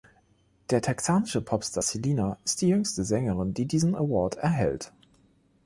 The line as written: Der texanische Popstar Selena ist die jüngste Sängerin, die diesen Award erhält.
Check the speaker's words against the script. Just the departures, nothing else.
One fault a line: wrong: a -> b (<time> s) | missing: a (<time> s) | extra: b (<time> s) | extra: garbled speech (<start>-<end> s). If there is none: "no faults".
no faults